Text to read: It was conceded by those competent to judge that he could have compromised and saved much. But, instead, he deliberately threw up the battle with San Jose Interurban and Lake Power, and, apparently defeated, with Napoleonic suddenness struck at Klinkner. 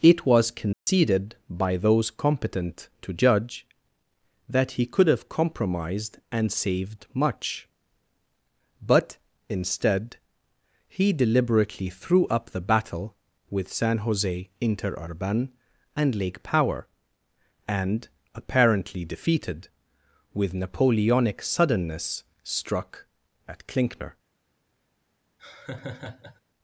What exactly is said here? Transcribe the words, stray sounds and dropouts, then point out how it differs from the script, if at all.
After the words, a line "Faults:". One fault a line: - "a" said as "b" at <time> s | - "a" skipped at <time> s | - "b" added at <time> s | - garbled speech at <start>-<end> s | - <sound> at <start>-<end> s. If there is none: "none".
It was conceded by those competent to judge that he could have compromised and saved much. But, instead, he deliberately threw up the battle with San Jose Interurban and Lake Power, and, apparently defeated, with Napoleonic suddenness struck at Klinkner.
Faults:
- dropout at 0.7-0.9 s
- laugh at 25.4-26.4 s